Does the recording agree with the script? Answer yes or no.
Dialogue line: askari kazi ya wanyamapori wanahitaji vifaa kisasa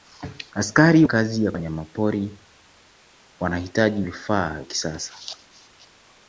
yes